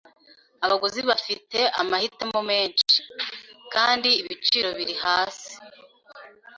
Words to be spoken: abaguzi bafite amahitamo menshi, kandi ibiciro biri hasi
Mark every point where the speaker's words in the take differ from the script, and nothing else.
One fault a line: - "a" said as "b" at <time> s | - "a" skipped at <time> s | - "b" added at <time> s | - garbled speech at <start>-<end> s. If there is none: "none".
none